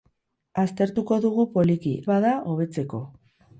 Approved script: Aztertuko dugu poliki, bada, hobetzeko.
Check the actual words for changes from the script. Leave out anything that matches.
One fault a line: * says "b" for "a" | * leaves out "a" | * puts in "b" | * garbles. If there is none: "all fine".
all fine